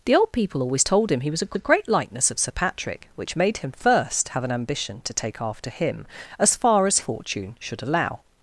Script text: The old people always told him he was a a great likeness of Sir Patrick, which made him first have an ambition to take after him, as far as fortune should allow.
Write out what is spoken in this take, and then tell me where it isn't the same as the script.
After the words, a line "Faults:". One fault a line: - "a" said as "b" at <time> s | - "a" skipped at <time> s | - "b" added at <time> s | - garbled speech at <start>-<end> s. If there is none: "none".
The old people always told him he was a a great likeness of Sir Patrick, which made him first have an ambition to take after him, as far as fortune should allow.
Faults:
none